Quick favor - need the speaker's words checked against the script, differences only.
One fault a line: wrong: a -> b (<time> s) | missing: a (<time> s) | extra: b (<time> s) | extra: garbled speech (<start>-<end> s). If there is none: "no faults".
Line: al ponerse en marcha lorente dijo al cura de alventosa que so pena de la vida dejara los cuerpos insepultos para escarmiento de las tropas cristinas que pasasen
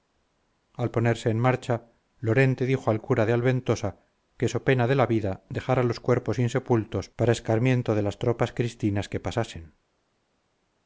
no faults